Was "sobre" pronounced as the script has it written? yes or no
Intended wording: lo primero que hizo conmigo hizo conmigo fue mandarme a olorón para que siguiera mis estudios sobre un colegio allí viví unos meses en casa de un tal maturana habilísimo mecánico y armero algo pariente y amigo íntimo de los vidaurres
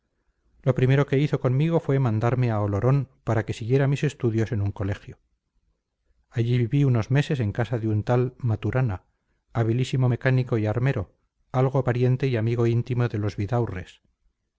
no